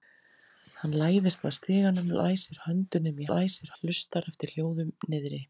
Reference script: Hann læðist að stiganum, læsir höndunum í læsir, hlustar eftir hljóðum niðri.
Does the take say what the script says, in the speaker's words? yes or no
yes